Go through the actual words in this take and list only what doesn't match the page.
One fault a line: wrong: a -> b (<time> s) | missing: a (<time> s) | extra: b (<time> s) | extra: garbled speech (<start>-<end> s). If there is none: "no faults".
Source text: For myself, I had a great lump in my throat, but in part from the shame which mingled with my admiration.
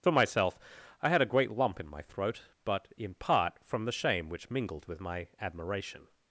no faults